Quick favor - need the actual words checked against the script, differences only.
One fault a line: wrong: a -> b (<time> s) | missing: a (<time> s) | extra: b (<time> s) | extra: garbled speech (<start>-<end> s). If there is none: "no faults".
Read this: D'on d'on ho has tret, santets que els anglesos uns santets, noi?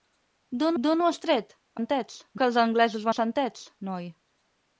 no faults